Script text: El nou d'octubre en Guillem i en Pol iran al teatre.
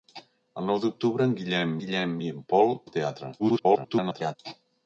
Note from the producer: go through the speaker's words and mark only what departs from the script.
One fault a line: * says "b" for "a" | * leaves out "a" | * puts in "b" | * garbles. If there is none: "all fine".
* puts in "Guillem"
* leaves out "iran"
* garbles